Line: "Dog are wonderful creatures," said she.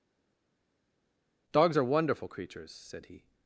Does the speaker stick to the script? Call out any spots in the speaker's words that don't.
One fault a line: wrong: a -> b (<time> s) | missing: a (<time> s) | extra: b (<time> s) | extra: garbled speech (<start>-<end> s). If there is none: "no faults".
wrong: Dog -> Dogs (1.5 s)
wrong: she -> he (3.0 s)